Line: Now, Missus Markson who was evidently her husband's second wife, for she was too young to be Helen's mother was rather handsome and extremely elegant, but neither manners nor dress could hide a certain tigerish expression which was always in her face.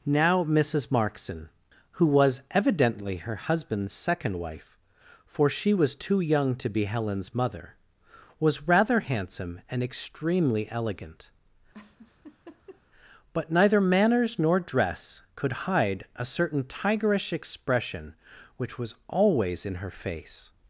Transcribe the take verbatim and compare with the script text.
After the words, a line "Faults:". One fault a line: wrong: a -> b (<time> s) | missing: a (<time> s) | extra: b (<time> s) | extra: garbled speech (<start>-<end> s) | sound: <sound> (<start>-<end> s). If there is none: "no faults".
Now, Missus Markson who was evidently her husband's second wife, for she was too young to be Helen's mother was rather handsome and extremely elegant, but neither manners nor dress could hide a certain tigerish expression which was always in her face.
Faults:
sound: laugh (11.7-12.8 s)